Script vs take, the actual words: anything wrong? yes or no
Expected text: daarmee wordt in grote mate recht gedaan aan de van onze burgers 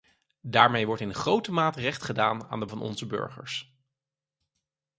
no